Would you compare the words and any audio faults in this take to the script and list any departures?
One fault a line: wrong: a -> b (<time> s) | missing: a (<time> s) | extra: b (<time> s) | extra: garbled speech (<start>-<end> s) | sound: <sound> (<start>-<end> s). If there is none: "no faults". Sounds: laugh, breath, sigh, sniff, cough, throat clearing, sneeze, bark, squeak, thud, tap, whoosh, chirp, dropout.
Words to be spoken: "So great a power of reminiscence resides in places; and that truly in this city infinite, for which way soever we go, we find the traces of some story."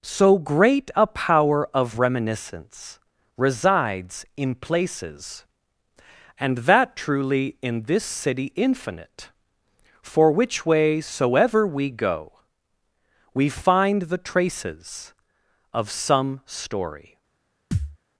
sound: thud (17.7-18.0 s)